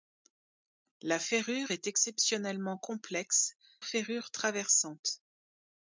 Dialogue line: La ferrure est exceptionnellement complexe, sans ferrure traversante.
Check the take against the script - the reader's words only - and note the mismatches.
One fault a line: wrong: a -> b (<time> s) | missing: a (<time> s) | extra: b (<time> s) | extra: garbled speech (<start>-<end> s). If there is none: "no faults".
missing: sans (3.5 s)